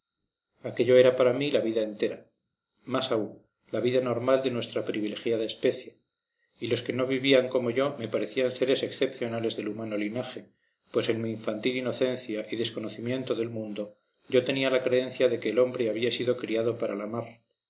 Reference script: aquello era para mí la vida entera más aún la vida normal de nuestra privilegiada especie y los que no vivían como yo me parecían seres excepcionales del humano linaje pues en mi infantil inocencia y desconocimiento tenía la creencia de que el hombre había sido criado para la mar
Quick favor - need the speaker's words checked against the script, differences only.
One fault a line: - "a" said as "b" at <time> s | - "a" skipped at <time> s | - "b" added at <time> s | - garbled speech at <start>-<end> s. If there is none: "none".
- "del mundo yo" added at 13.3 s